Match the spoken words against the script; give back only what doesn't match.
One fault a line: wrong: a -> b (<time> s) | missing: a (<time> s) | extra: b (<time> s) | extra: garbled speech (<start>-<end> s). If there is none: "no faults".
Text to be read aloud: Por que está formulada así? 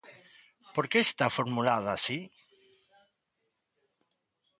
no faults